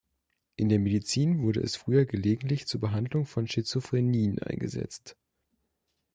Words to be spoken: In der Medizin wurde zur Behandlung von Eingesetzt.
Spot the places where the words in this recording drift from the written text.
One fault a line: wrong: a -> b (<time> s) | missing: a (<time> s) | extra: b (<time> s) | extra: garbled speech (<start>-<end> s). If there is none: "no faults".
extra: es früher gelegentlich (1.6 s)
extra: Schizophrenien (3.5 s)